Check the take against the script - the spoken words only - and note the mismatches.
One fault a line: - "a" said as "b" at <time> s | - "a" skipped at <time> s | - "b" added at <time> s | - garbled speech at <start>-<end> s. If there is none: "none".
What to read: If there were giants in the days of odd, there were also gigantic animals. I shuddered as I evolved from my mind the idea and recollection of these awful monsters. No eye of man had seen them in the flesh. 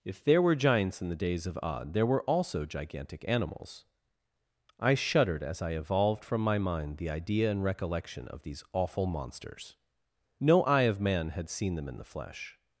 none